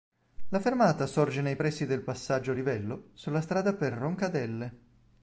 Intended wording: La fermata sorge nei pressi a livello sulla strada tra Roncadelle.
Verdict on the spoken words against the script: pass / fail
fail